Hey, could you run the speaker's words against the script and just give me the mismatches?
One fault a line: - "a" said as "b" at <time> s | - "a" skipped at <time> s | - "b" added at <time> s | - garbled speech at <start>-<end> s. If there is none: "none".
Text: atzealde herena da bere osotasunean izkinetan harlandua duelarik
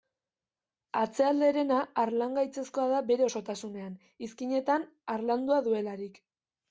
- "harlangaitzezkoa" added at 2.0 s